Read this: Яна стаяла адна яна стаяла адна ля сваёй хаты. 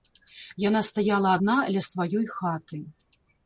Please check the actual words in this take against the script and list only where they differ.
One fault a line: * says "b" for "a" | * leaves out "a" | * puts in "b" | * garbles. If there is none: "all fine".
* leaves out "яна стаяла адна"